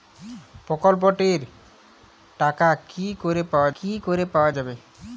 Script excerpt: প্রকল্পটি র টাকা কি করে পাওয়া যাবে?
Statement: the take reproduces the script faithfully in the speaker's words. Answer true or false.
false